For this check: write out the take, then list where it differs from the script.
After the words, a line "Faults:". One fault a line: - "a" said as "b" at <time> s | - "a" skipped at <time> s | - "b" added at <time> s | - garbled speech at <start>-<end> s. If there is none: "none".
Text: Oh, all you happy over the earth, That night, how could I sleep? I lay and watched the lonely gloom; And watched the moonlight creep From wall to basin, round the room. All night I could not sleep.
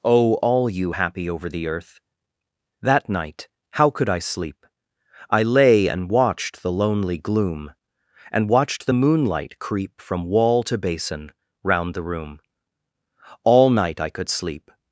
Oh, all you happy over the earth, That night, how could I sleep? I lay and watched the lonely gloom; And watched the moonlight creep From wall to basin, round the room. All night I could sleep.
Faults:
- "not" skipped at 14.3 s